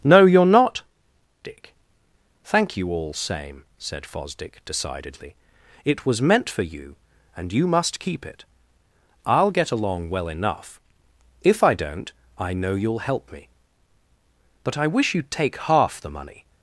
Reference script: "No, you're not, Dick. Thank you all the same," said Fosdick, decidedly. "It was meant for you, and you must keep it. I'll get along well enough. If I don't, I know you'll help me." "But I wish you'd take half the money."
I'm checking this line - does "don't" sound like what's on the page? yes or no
yes